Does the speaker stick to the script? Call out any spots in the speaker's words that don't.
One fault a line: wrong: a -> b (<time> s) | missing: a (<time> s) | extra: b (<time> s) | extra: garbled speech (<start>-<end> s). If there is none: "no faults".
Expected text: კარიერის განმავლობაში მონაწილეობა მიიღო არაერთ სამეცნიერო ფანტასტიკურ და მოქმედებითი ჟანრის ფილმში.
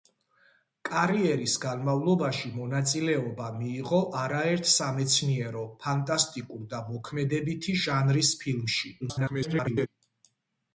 extra: garbled speech (9.0-9.9 s)